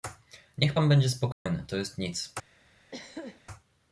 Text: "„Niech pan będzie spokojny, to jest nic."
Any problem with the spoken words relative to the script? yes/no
no